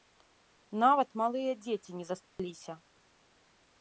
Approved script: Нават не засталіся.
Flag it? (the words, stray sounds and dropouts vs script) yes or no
yes